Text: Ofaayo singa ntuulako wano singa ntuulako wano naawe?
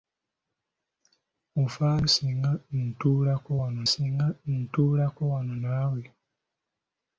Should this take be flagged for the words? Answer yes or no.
no